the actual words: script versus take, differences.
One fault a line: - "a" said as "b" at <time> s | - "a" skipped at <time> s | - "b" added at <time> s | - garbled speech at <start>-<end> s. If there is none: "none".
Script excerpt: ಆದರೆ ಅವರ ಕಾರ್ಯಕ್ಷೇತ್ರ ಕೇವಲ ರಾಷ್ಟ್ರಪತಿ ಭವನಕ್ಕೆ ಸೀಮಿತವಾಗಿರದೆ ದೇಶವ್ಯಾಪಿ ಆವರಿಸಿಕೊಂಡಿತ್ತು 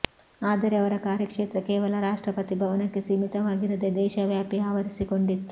none